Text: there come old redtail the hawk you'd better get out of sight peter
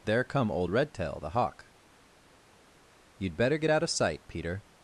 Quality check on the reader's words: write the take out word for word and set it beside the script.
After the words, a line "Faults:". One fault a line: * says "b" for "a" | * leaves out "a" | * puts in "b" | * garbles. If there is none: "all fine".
there come old redtail the hawk you'd better get out of sight peter
Faults:
all fine